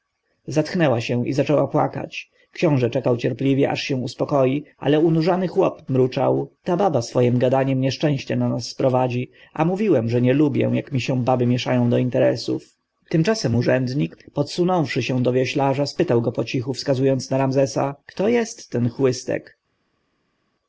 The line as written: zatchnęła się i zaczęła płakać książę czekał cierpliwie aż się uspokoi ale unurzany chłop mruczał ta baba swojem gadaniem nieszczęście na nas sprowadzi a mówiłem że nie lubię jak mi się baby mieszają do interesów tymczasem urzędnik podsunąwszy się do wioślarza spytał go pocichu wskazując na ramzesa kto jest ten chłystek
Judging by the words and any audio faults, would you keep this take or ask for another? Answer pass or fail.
pass